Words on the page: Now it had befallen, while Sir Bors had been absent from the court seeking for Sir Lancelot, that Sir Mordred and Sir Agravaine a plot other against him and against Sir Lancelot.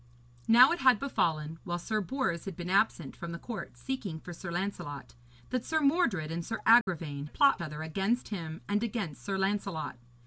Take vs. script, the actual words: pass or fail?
pass